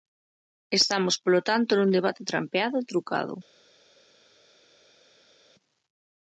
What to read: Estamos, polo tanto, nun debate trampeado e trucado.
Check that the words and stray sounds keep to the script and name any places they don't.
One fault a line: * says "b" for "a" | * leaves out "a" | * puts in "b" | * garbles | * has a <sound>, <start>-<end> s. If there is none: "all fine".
all fine